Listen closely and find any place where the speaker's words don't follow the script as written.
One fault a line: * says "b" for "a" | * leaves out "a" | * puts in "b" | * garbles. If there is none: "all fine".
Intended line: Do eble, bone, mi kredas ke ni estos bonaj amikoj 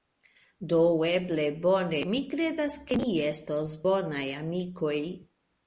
all fine